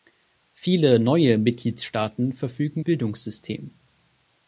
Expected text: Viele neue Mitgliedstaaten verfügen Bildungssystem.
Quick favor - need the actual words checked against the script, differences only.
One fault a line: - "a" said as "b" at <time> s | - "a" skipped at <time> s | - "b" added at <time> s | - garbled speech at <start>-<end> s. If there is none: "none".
none